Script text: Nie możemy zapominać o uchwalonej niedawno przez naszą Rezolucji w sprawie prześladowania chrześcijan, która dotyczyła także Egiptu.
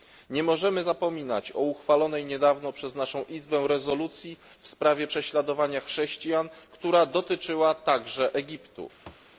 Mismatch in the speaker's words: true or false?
true